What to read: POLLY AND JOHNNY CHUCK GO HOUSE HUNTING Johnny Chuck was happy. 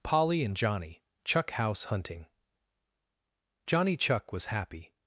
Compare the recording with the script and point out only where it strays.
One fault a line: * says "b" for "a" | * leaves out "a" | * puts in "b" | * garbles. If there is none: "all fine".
* leaves out "GO"